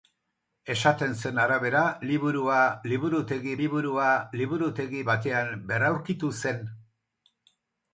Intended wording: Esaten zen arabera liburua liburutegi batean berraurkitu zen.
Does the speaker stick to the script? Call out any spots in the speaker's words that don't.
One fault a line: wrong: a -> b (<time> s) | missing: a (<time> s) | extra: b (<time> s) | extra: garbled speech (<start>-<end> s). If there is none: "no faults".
extra: liburua liburutegi (3.6 s)